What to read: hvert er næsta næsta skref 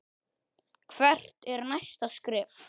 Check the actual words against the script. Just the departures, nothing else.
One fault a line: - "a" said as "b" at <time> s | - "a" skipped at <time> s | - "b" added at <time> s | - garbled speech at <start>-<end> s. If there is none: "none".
- "næsta" skipped at 2.1 s